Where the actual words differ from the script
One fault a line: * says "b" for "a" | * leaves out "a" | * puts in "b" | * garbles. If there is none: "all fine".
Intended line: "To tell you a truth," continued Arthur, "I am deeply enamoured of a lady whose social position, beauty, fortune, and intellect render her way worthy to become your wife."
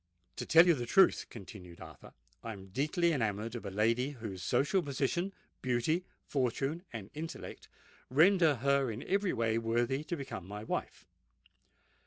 * says "the" for "a"
* puts in "in every"
* says "my" for "your"